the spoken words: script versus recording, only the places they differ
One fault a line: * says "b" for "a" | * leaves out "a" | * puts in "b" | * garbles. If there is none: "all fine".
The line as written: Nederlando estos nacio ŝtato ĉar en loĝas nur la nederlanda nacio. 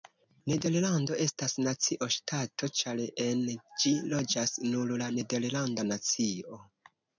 * says "estas" for "estos"
* puts in "ĝi"